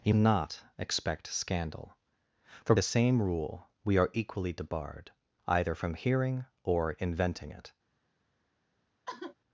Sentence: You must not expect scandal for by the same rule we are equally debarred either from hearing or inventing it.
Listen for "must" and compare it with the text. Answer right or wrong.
wrong